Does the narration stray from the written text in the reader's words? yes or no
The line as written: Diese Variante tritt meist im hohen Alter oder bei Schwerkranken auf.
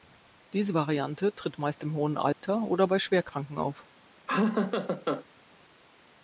no